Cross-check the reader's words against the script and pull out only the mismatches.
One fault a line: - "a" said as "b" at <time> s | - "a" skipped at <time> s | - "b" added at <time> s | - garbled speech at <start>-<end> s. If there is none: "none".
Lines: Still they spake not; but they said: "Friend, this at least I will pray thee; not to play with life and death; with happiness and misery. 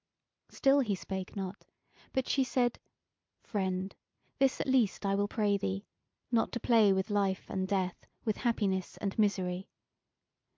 - "they" said as "he" at 0.8 s
- "they" said as "she" at 2.3 s